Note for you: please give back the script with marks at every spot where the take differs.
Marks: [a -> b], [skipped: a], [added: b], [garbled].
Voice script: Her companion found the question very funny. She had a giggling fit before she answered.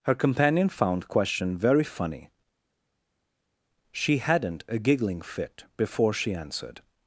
Her companion found [skipped: the] question very funny. She [had -> hadn't] a giggling fit before she answered.